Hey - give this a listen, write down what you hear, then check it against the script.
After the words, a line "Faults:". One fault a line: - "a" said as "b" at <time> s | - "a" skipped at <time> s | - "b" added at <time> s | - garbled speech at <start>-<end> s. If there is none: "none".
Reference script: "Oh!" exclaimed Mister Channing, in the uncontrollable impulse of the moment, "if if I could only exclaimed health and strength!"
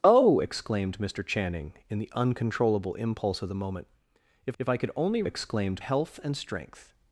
"Oh!" exclaimed Mister Channing, in the uncontrollable impulse of the moment, "if if I could only exclaimed health and strength!"
Faults:
none